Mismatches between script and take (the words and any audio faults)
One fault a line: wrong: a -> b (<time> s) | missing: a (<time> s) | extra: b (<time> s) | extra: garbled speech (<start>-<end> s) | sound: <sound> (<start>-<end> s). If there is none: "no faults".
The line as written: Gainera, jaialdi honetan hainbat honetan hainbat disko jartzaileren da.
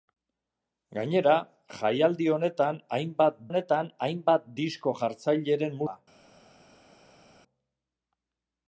no faults